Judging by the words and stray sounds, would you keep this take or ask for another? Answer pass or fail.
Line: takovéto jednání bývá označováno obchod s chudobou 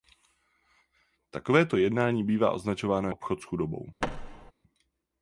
fail